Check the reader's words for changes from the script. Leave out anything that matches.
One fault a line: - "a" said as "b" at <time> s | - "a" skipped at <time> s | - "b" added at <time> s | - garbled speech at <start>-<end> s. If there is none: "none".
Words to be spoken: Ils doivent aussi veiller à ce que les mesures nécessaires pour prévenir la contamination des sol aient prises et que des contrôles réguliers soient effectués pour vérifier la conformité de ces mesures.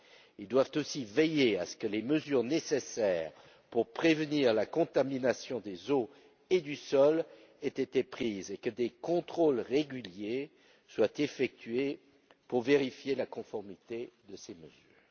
- "eaux et du" added at 5.9 s
- "été" added at 7.7 s